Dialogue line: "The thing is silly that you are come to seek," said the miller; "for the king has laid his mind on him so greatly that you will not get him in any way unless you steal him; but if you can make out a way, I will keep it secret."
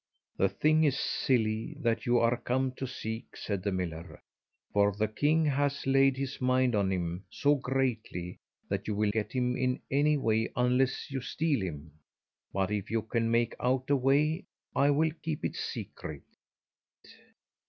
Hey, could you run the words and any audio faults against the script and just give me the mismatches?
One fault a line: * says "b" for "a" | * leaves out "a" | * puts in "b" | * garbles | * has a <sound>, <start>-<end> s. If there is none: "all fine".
* leaves out "not"